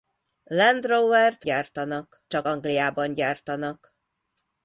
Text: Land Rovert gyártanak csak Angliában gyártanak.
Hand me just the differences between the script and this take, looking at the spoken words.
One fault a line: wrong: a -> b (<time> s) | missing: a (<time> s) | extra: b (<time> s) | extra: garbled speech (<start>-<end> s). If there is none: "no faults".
no faults